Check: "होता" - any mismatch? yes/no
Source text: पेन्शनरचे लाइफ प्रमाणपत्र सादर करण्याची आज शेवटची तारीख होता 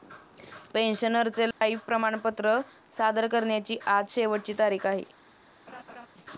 yes